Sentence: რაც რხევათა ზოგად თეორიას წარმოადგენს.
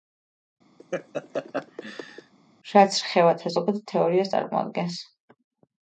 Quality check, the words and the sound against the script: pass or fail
fail